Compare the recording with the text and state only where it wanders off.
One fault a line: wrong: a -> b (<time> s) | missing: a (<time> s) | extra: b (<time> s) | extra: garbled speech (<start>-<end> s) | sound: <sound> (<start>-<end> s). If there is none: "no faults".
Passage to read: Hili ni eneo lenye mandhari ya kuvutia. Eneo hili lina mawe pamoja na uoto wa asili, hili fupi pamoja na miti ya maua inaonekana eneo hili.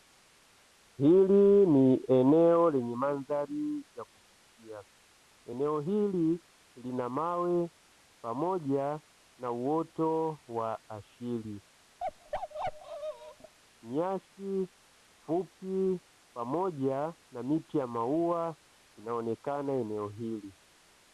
sound: bark (12.0-13.5 s)
wrong: hili -> nyasi (13.8 s)